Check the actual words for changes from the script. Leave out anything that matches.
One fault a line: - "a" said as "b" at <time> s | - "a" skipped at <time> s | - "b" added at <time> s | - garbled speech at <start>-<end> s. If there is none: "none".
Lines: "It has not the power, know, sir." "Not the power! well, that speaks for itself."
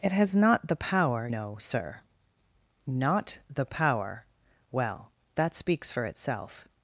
none